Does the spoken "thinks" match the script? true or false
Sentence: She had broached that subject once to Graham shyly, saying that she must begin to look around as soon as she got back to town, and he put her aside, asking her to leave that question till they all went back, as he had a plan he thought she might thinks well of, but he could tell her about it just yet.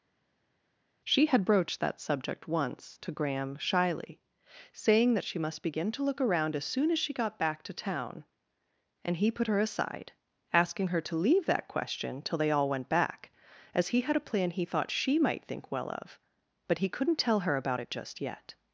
false